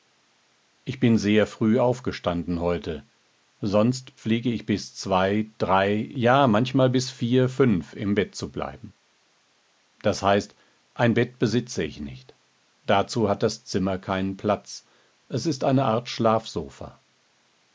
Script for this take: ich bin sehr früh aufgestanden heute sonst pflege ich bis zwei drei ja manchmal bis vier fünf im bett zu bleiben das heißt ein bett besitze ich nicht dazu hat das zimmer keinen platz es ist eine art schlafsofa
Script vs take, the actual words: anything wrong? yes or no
no